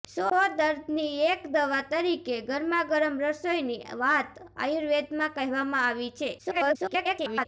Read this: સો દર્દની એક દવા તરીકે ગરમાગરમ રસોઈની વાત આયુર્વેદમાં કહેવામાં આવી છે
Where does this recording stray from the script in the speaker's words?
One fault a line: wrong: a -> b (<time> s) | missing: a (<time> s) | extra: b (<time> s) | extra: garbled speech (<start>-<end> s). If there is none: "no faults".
extra: garbled speech (6.4-7.5 s)